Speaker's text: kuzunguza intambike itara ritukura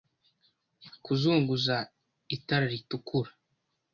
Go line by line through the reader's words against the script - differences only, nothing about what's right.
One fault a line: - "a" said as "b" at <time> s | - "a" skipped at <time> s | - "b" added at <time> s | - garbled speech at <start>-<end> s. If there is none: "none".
- "intambike" skipped at 1.8 s